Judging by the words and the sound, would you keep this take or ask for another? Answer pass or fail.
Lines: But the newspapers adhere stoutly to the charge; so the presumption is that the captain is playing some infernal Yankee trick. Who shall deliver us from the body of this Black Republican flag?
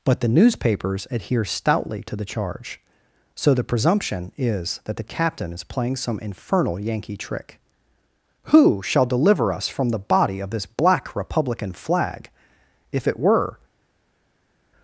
fail